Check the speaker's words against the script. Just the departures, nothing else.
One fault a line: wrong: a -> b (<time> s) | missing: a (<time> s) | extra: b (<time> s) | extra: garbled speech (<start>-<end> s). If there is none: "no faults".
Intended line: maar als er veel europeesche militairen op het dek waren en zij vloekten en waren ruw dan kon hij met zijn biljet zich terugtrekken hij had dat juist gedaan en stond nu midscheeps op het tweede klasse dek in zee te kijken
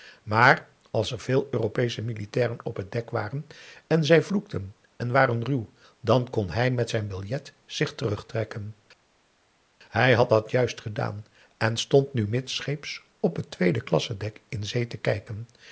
no faults